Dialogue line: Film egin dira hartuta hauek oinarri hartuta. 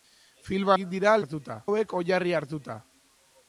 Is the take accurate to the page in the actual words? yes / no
yes